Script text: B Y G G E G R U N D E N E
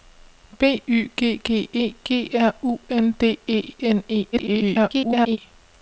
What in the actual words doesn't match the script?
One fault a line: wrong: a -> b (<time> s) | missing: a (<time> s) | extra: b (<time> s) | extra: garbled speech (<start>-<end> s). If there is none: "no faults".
extra: garbled speech (4.3-5.4 s)